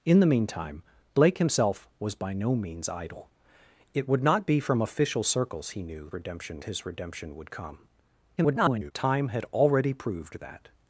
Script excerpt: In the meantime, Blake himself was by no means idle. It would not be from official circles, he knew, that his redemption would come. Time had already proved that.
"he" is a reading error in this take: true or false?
false